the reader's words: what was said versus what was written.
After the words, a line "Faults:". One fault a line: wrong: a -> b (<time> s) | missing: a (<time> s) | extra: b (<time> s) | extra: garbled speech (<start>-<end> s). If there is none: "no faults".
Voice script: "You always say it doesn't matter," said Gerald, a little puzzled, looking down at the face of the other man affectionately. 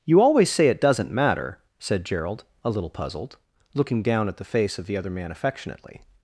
"You always say it doesn't matter," said Gerald, a little puzzled, looking down at the face of the other man affectionately.
Faults:
no faults